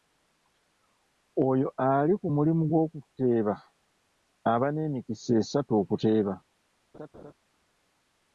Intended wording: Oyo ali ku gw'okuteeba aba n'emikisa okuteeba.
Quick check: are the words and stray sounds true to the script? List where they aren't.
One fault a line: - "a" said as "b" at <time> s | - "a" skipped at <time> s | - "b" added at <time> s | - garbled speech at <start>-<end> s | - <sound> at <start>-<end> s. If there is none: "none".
- "mulimu" added at 2.3 s
- "esatu" added at 5.4 s
- laugh at 6.9-7.3 s